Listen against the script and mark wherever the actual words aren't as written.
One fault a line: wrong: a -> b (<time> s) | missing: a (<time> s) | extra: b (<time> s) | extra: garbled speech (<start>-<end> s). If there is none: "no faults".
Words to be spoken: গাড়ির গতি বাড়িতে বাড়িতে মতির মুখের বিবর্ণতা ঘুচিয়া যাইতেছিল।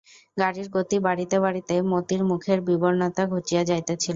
no faults